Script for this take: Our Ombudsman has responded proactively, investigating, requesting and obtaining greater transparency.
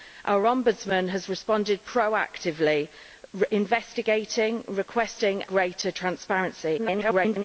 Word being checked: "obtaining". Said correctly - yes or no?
no